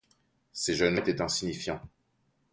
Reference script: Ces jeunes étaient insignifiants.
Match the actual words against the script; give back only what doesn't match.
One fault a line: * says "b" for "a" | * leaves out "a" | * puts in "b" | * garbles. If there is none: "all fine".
all fine